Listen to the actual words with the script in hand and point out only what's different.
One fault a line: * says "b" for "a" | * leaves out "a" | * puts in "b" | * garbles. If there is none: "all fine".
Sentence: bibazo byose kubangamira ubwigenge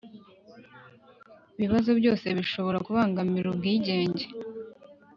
* puts in "bishobora"